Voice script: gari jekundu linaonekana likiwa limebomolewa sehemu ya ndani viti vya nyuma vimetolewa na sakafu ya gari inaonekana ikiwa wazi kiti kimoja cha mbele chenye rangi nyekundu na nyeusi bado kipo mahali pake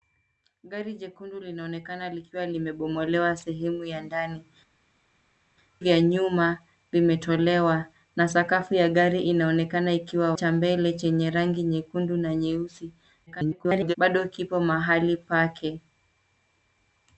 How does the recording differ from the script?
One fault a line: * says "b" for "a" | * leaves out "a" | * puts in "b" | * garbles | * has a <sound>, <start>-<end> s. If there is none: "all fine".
* leaves out "viti"
* leaves out "wazi kiti kimoja"
* garbles